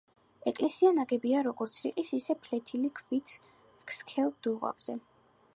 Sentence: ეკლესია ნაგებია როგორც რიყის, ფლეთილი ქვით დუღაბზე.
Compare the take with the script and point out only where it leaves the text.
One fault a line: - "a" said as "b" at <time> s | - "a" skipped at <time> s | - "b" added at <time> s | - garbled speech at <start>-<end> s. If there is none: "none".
- "ისე" added at 2.2 s
- "სქელ" added at 4.0 s